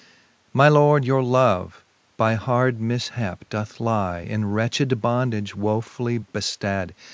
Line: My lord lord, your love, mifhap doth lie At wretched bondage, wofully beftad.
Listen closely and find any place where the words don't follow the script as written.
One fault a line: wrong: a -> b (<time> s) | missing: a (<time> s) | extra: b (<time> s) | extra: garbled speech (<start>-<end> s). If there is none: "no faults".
missing: lord (1.1 s)
extra: by hard (2.2 s)
wrong: At -> In (4.2 s)